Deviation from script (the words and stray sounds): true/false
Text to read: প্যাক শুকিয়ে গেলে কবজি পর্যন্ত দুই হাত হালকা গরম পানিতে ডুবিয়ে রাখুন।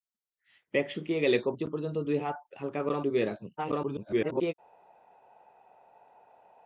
true